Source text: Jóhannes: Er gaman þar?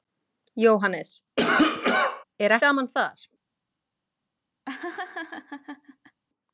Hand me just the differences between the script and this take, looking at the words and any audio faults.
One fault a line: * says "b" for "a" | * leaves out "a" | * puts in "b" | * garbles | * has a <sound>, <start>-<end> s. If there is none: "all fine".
* has a cough, 1.4-2.2 s
* has a laugh, 4.7-6.2 s